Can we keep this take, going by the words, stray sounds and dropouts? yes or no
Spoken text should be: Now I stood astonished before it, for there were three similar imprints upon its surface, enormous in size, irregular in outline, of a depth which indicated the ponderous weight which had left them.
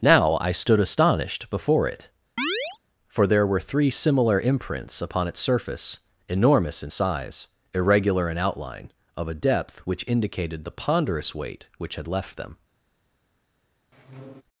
no